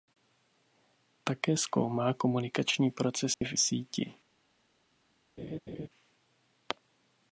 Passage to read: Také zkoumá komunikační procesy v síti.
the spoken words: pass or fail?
pass